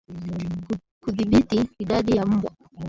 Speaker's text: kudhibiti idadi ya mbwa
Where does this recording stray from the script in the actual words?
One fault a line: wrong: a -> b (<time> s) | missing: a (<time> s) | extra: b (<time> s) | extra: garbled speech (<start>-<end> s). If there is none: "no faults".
no faults